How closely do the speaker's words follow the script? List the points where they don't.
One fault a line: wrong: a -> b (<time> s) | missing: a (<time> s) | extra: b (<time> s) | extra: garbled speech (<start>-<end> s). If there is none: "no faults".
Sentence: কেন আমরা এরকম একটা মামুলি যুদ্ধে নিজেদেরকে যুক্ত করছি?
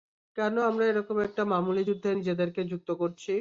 no faults